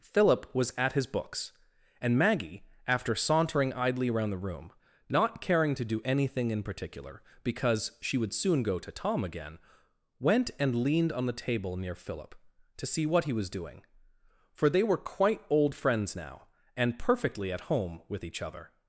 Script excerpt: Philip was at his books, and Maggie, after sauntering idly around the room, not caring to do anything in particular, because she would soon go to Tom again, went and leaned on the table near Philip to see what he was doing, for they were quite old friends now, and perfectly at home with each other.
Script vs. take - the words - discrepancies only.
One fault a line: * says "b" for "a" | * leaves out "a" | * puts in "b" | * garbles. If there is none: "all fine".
all fine